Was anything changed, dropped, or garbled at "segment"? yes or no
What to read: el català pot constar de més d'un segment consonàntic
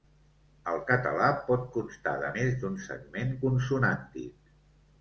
no